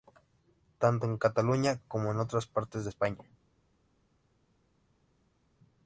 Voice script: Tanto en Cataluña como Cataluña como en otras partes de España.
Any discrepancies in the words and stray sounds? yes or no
yes